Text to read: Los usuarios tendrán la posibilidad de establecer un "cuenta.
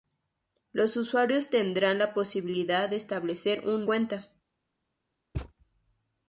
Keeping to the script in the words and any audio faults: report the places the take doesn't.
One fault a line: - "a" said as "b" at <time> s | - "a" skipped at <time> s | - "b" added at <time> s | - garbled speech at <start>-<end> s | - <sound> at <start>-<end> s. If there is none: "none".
- thud at 5.3-5.5 s